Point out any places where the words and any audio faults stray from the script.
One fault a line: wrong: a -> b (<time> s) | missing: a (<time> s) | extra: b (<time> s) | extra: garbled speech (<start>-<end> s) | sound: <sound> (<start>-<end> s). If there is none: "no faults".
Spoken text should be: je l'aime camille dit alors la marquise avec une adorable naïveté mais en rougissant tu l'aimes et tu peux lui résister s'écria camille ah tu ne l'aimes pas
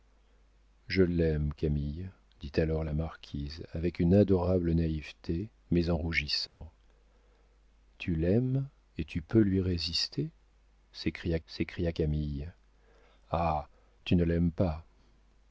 sound: dropout (6.5-6.6 s)
extra: s'écria (11.5 s)